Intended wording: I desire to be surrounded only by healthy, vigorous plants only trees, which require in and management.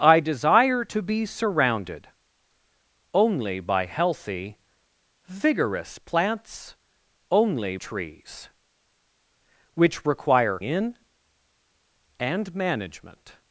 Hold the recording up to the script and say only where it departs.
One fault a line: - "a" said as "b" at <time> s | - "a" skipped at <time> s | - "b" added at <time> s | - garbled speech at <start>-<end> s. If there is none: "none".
none